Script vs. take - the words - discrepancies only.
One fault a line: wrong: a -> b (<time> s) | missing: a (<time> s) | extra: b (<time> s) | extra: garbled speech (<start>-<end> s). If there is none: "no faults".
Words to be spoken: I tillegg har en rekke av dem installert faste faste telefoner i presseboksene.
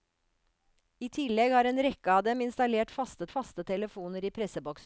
no faults